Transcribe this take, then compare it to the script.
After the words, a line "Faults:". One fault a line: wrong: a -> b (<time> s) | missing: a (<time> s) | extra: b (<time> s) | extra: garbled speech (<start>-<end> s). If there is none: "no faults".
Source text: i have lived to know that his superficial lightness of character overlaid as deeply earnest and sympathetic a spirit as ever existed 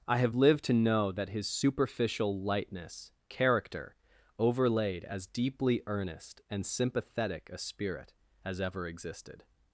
i have lived to know that his superficial lightness character overlaid as deeply earnest and sympathetic a spirit as ever existed
Faults:
missing: of (3.1 s)